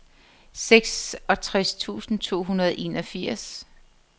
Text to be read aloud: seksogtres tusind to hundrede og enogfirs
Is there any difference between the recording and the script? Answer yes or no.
no